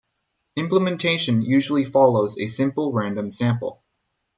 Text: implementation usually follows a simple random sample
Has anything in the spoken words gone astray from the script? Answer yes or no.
no